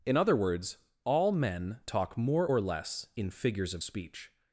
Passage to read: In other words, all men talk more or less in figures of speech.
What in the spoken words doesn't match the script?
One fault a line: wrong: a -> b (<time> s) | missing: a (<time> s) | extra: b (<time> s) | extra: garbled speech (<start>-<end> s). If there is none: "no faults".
no faults